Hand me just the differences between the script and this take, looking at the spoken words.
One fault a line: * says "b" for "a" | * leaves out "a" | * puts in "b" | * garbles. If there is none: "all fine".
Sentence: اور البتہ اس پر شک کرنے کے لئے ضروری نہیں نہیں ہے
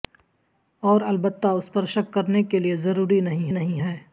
all fine